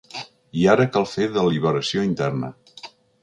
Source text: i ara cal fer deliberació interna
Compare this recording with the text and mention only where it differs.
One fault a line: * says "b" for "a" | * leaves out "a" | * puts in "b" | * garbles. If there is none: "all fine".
all fine